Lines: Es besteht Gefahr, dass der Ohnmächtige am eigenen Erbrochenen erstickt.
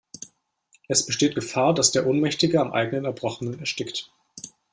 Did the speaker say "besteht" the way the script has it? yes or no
yes